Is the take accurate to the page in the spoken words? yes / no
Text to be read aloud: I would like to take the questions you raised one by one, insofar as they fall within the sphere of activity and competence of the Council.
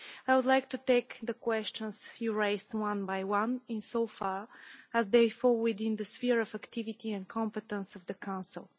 yes